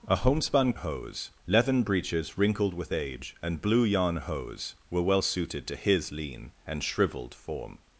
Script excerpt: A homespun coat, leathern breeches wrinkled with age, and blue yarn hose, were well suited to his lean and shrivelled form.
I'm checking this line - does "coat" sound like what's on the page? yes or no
no